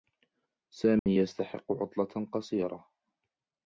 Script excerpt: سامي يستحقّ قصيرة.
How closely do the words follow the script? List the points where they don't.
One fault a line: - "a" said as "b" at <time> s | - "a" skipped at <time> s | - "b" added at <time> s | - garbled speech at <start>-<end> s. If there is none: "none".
- "عطلة" added at 1.7 s